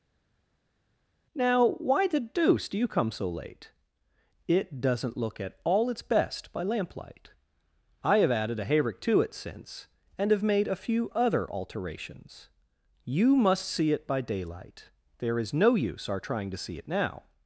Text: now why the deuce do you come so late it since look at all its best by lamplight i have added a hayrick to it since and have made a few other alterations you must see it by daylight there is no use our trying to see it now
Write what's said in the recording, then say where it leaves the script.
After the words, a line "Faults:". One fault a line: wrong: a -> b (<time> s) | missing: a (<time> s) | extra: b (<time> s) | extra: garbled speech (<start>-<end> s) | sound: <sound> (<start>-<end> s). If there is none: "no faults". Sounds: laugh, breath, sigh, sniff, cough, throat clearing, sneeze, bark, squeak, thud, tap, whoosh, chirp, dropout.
now why the deuce do you come so late it doesn't look at all its best by lamplight i have added a hayrick to it since and have made a few other alterations you must see it by daylight there is no use our trying to see it now
Faults:
wrong: since -> doesn't (4.8 s)